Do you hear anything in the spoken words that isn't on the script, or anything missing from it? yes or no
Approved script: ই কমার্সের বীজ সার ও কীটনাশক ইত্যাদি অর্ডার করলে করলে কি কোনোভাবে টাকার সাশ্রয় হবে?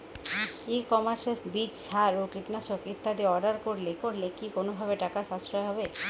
no